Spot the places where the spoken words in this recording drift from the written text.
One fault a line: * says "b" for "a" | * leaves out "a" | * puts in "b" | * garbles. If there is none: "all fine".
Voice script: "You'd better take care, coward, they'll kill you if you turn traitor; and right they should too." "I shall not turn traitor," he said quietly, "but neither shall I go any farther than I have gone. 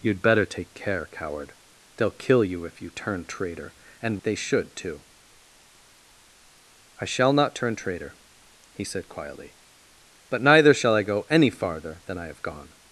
* leaves out "right"